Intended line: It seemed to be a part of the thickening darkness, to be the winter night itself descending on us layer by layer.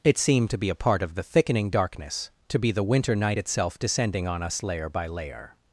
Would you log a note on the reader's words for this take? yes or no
no